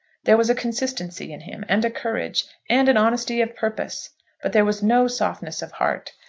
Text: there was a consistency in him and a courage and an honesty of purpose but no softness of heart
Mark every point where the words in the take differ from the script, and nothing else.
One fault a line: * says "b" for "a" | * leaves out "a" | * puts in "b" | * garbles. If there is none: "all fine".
* puts in "there was"